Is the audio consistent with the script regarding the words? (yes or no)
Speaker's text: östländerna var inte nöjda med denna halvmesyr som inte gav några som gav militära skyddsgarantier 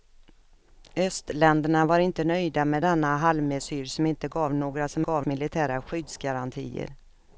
yes